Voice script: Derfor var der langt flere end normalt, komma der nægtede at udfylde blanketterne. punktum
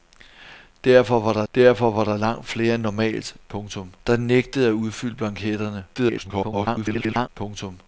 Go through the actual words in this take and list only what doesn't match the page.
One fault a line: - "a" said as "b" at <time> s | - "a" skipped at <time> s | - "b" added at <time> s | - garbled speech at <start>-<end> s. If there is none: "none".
- "derfor var der" added at 1.5 s
- "komma" said as "punktum" at 3.5 s
- garbled speech at 5.9-7.3 s